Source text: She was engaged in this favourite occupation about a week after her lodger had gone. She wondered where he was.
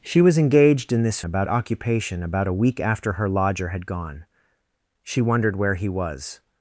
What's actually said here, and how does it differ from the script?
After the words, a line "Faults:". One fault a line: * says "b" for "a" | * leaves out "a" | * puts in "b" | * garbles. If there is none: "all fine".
She was engaged in this about occupation about a week after her lodger had gone. She wondered where he was.
Faults:
* says "about" for "favourite"